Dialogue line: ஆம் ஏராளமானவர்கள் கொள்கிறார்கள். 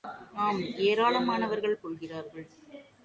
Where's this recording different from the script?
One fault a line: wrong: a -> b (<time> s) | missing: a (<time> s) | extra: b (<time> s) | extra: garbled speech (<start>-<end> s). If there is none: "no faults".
no faults